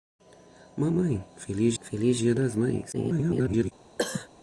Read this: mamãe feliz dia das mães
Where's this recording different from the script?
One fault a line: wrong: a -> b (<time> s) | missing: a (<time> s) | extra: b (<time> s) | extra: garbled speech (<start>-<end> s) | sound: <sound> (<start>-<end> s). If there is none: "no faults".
extra: feliz (1.8 s)
extra: garbled speech (2.9-3.7 s)
sound: cough (4.0-4.3 s)